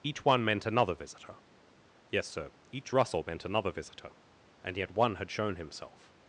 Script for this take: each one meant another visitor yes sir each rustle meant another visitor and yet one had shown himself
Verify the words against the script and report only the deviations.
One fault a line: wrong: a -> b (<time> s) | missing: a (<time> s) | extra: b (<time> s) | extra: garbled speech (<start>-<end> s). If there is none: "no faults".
no faults